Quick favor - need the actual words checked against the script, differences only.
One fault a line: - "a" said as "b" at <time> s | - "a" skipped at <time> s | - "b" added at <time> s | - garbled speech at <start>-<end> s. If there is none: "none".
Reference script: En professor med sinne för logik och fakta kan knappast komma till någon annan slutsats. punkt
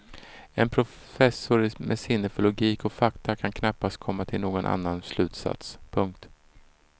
none